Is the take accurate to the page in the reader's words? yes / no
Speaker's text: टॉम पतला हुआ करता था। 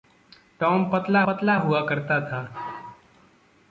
no